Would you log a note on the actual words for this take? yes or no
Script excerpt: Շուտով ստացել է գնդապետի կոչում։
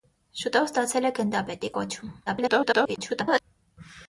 yes